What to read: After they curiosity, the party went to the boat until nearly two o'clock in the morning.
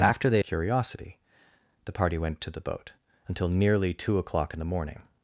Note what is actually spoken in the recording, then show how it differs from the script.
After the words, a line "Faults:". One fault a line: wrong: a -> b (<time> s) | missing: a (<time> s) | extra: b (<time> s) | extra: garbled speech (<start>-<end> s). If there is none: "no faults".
After they curiosity, the party went to the boat until nearly two o'clock in the morning.
Faults:
no faults